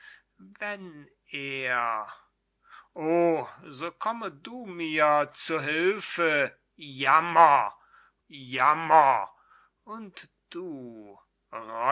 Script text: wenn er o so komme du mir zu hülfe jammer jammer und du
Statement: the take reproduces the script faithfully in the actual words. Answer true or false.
true